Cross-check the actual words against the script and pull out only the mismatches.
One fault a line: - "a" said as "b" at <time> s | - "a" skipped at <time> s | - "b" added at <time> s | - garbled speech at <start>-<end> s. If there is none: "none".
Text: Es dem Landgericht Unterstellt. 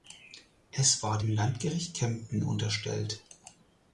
- "war" added at 1.0 s
- "Kempten" added at 2.0 s